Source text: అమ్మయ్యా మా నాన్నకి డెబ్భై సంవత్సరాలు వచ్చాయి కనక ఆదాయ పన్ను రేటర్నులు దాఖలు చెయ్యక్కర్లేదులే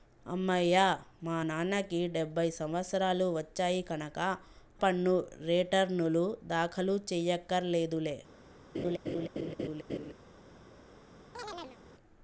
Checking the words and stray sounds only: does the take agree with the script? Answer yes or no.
no